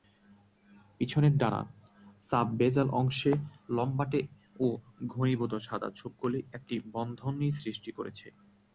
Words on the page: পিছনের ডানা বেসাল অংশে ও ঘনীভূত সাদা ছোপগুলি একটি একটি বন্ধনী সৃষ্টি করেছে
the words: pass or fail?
fail